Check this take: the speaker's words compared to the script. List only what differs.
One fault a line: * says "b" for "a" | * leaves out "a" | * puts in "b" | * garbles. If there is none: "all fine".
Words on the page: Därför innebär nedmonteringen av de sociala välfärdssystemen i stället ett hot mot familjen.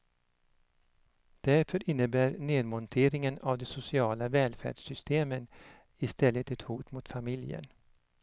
all fine